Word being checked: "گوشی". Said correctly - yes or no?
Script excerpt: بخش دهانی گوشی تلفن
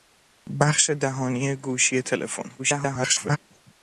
yes